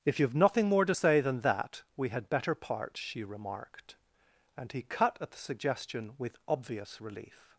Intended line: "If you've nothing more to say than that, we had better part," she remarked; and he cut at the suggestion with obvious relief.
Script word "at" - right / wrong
right